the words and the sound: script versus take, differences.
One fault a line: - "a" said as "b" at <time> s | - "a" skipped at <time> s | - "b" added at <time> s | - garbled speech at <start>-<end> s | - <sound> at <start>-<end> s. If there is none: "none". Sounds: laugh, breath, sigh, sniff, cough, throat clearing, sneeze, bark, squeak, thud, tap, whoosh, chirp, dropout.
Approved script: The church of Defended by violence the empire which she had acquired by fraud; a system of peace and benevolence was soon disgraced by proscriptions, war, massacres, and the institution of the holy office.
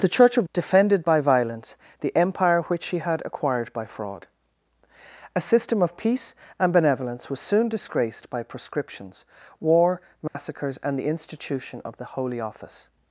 - dropout at 10.3-10.4 s